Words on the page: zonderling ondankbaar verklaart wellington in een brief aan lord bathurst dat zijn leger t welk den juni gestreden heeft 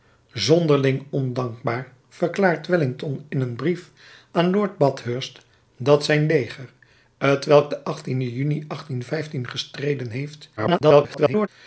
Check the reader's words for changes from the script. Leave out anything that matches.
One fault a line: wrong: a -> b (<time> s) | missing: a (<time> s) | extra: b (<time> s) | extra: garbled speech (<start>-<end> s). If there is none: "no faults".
extra: garbled speech (10.6-11.5 s)